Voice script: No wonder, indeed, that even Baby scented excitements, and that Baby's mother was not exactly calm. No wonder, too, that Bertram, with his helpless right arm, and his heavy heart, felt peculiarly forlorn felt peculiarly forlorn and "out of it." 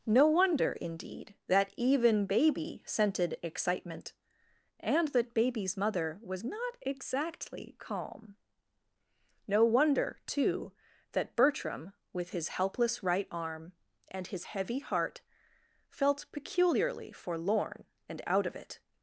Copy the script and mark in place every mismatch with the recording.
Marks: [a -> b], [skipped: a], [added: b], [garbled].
No wonder, indeed, that even Baby scented [excitements, -> excitement] and that Baby's mother was not exactly calm. No wonder, too, that Bertram, with his helpless right arm, and his heavy heart, felt peculiarly forlorn [skipped: felt peculiarly forlorn] and "out of it."